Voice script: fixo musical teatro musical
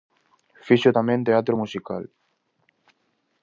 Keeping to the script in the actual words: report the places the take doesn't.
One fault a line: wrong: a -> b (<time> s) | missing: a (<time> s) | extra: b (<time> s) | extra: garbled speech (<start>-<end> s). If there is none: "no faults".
wrong: musical -> tamén (1.0 s)